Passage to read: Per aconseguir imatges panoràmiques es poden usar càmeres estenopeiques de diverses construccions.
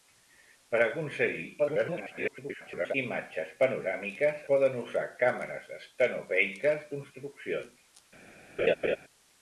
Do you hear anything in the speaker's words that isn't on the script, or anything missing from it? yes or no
yes